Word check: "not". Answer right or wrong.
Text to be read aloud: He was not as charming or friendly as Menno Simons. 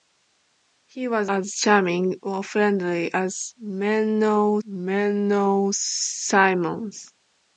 wrong